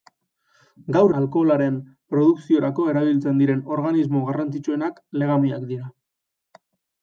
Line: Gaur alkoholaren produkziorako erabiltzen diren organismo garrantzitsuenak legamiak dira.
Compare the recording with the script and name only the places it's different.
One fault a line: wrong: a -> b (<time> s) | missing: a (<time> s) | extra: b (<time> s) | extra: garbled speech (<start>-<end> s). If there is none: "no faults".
no faults